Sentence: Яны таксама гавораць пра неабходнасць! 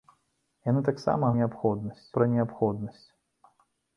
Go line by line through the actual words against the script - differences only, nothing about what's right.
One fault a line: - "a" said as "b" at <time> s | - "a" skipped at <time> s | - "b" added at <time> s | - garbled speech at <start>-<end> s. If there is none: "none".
- "гавораць" said as "неабходнасць" at 1.4 s